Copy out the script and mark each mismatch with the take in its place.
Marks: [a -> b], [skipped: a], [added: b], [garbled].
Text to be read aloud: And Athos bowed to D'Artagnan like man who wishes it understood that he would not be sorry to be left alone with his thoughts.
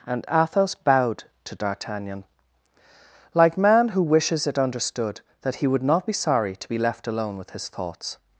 And Athos bowed to D'Artagnan like man who wishes it understood that he would not be sorry to be left alone with his thoughts.